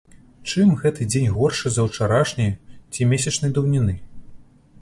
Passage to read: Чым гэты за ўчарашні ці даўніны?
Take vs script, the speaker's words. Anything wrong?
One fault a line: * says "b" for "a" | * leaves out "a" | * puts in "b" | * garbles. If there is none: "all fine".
* puts in "дзень горшы"
* puts in "месячнай"